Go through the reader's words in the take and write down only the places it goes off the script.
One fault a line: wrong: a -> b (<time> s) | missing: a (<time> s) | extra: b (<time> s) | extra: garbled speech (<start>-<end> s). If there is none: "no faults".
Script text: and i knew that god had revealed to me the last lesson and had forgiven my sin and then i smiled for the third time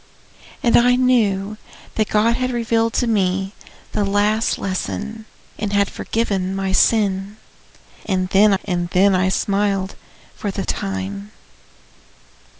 extra: and then (8.6 s)
missing: third (10.6 s)